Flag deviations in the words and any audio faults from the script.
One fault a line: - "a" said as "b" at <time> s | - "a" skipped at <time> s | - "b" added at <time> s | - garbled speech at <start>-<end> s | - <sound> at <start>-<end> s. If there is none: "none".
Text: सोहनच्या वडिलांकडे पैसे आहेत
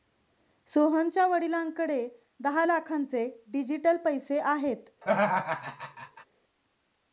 - "दहा लाखांचे डिजिटल" added at 2.4 s
- laugh at 5.0-6.3 s